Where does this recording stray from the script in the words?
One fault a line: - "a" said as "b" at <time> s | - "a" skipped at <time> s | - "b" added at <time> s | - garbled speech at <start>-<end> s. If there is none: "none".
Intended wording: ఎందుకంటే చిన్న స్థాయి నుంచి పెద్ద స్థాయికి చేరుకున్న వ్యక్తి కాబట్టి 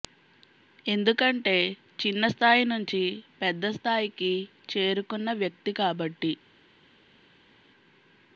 none